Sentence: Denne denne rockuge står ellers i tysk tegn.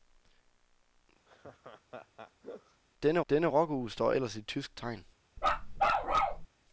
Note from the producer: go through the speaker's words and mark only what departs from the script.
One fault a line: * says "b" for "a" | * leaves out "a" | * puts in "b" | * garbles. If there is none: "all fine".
all fine